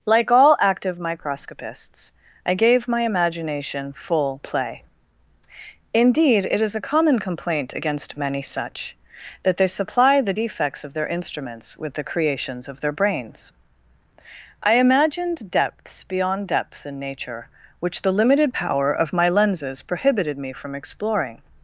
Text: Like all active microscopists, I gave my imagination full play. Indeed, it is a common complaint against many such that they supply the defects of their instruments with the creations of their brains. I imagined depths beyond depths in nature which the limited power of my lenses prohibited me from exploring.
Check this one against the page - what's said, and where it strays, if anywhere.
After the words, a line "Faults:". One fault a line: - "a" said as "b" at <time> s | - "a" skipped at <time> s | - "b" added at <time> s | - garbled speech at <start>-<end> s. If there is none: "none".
Like all active microscopists, I gave my imagination full play. Indeed, it is a common complaint against many such that they supply the defects of their instruments with the creations of their brains. I imagined depths beyond depths in nature which the limited power of my lenses prohibited me from exploring.
Faults:
none